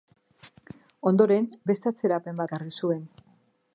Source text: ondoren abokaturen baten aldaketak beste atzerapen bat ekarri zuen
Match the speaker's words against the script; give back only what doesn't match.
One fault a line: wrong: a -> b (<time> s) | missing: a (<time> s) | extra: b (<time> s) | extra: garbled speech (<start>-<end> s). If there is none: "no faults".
missing: abokaturen baten aldaketak (1.4 s)
missing: bat (2.4 s)